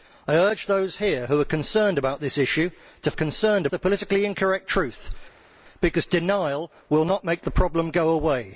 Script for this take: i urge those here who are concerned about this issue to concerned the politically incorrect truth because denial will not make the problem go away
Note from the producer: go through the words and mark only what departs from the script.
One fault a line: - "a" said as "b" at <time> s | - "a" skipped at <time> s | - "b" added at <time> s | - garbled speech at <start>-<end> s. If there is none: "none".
none